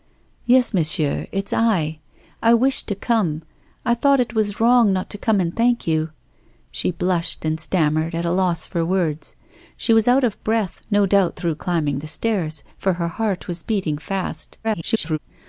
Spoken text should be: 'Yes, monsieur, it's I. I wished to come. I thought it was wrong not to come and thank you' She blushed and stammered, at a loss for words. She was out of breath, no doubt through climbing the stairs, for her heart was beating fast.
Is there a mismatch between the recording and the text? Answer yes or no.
yes